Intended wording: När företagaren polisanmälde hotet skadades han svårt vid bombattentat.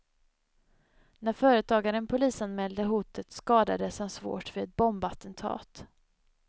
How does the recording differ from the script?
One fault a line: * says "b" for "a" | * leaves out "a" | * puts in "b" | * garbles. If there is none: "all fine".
* puts in "ett"